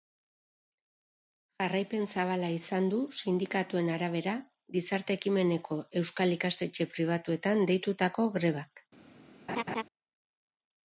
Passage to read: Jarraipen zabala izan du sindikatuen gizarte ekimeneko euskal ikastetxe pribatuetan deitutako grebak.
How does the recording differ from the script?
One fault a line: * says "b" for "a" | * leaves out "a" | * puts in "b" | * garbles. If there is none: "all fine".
* puts in "arabera"